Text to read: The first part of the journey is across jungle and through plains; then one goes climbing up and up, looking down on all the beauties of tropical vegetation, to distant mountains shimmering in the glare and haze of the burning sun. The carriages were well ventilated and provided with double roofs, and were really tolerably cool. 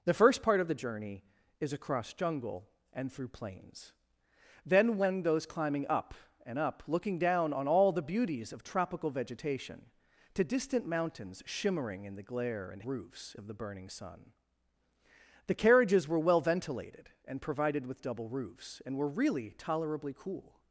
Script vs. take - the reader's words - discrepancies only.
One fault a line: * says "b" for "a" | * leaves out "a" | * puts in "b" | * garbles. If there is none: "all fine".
* says "roofs" for "haze"